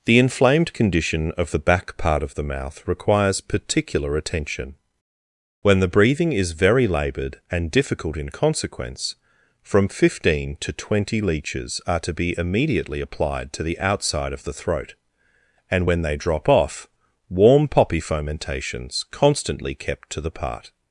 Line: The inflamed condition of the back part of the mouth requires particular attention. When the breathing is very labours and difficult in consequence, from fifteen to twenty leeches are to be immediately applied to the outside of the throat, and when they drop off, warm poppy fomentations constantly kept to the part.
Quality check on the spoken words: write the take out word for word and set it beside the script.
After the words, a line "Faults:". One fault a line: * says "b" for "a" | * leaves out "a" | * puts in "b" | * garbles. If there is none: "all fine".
The inflamed condition of the back part of the mouth requires particular attention. When the breathing is very laboured and difficult in consequence, from fifteen to twenty leeches are to be immediately applied to the outside of the throat, and when they drop off, warm poppy fomentations constantly kept to the part.
Faults:
* says "laboured" for "labours"